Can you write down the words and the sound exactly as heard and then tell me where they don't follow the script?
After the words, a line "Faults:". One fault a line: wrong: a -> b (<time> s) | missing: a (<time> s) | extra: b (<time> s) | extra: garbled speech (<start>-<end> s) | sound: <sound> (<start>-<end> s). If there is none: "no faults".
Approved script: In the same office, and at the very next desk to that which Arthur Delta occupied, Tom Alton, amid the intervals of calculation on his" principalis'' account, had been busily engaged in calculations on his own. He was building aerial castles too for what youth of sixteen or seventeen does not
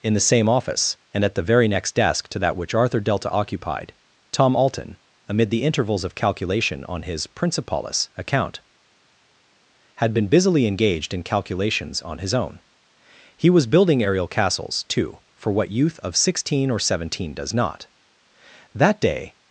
In the same office, and at the very next desk to that which Arthur Delta occupied, Tom Alton, amid the intervals of calculation on his" principalis'' account, had been busily engaged in calculations on his own. He was building aerial castles too for what youth of sixteen or seventeen does not That day
Faults:
extra: That day (18.7 s)